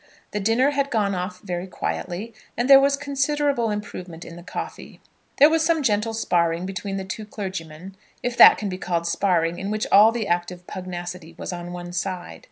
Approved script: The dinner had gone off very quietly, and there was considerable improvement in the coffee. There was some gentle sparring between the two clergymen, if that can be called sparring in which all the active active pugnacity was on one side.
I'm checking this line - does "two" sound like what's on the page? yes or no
yes